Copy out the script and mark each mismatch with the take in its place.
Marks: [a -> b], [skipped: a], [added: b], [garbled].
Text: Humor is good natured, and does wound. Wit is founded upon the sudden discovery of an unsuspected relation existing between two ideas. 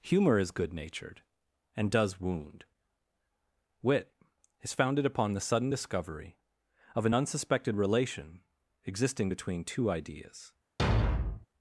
Humor is good natured, and does wound. Wit is founded upon the sudden discovery of an unsuspected relation existing between two ideas.